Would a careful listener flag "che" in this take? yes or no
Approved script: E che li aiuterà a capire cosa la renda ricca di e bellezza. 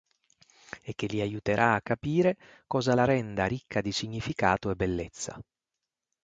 no